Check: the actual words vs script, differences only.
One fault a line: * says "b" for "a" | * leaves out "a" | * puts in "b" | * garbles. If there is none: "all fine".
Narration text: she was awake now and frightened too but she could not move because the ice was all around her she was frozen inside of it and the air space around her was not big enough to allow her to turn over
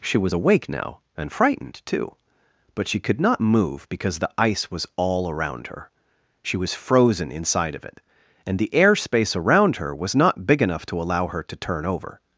all fine